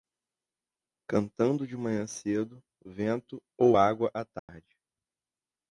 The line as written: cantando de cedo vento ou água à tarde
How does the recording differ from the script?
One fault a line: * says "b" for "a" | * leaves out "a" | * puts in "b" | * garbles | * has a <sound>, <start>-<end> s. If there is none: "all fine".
* puts in "manhã"
* has a dropout, 4.4-4.5 s